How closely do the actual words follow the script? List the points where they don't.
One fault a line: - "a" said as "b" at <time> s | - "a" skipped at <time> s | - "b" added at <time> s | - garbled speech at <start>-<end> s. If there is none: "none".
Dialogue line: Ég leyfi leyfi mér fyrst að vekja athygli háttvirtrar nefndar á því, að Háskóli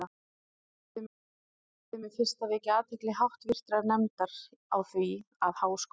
none